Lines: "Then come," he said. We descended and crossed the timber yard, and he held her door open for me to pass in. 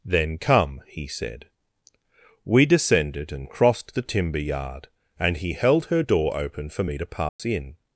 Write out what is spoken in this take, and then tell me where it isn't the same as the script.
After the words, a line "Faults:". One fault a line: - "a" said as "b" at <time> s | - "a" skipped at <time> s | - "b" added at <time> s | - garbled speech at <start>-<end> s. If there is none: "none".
"Then come," he said. We descended and crossed the timber yard, and he held her door open for me to pass in.
Faults:
none